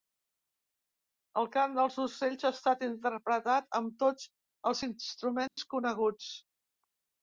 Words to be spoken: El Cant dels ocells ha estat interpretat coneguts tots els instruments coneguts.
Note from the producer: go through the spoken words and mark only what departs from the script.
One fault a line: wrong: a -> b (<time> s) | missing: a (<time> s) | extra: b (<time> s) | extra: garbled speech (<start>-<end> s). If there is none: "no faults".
wrong: coneguts -> amb (3.8 s)